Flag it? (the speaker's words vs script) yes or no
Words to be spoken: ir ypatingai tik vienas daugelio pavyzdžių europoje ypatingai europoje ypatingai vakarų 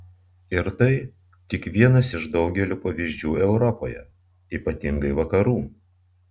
yes